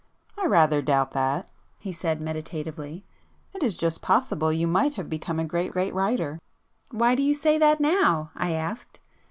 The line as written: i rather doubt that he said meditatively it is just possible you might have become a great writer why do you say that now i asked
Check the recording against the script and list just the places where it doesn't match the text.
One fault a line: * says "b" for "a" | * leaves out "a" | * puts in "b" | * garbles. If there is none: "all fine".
* puts in "great"